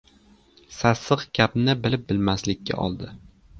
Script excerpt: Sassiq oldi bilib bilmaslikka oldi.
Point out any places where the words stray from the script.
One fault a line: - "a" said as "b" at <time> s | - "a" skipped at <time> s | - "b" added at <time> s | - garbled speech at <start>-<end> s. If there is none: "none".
- "oldi" said as "gapni" at 1.4 s